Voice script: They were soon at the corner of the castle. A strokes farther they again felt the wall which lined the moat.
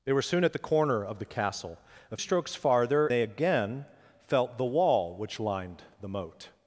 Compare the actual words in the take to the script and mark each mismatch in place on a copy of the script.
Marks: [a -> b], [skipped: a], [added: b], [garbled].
They were soon at the corner of the castle. A strokes farther they again felt the wall which lined the moat.